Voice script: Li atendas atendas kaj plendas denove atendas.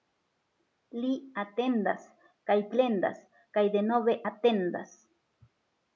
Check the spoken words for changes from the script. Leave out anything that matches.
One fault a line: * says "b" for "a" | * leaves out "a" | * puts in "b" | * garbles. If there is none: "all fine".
* leaves out "atendas"
* puts in "kaj"